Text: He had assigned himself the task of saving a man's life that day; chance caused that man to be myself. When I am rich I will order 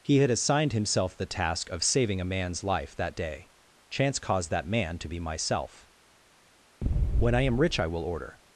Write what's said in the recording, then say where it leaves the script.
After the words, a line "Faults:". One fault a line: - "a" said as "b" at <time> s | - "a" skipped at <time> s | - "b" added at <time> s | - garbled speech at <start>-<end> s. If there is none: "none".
He had assigned himself the task of saving a man's life that day; chance caused that man to be myself. When I am rich I will order
Faults:
none